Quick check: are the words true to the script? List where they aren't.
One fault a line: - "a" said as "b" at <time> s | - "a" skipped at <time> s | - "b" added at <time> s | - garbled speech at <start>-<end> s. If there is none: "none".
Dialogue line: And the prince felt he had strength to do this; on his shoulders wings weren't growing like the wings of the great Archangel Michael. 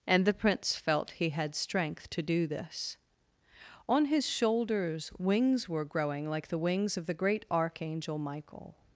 - "weren't" said as "were" at 5.7 s